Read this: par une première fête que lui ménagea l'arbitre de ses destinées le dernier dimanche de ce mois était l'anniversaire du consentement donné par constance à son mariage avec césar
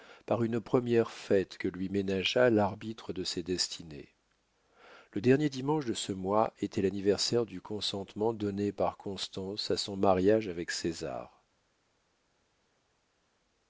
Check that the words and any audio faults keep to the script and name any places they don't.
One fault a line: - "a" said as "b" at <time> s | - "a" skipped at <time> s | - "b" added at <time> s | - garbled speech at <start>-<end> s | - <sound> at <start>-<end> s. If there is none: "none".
none